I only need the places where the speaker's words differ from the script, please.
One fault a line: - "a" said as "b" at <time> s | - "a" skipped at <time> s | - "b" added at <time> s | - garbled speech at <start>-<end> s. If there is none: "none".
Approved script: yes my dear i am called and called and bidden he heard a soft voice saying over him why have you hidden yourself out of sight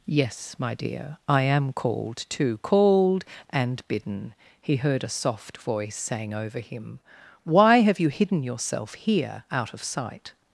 - "and" said as "too" at 2.3 s
- "here" added at 8.9 s